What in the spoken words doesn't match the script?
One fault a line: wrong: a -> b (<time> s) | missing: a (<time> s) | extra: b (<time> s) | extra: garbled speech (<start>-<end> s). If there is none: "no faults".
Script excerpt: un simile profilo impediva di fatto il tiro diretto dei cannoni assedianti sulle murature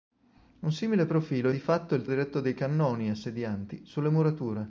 missing: impediva (1.5 s)
missing: tiro (2.1 s)